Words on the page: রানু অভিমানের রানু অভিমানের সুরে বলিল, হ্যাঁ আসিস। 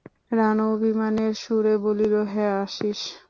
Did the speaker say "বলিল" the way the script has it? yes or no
yes